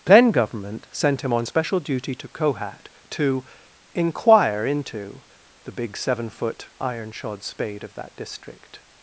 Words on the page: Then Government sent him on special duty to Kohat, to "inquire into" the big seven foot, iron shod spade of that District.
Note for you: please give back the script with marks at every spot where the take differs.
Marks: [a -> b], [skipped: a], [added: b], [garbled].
Then Government sent him on special duty to Kohat, to "inquire into" the big seven foot, iron shod spade of that District.